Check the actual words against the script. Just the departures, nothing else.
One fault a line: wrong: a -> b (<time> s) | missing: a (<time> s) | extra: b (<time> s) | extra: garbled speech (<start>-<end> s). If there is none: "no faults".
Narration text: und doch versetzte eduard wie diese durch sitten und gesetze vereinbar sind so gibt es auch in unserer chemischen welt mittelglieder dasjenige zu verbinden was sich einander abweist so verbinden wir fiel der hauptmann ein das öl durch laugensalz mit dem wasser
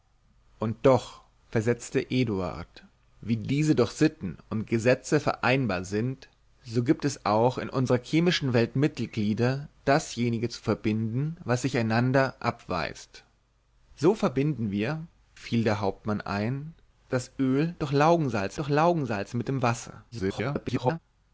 extra: durch laugensalz (18.5 s)
extra: garbled speech (20.1-21.0 s)